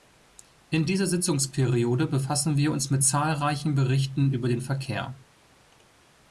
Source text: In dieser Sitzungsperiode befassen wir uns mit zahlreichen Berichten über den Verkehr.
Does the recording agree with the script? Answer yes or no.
yes